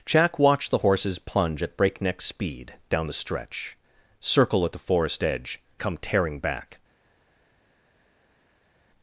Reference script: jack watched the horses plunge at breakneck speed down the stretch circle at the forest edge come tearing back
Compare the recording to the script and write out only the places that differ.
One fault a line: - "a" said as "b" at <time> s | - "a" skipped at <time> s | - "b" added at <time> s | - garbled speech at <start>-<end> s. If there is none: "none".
none